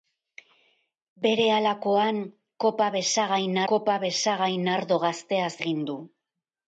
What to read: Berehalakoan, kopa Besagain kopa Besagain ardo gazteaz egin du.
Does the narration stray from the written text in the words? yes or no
no